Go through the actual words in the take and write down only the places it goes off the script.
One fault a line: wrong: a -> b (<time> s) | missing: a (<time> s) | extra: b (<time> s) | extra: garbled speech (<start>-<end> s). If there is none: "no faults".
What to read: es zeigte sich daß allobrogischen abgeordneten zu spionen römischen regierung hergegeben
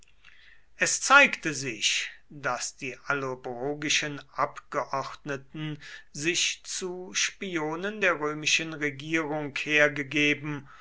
extra: die (2.8 s)
extra: sich (6.1 s)
extra: der (8.0 s)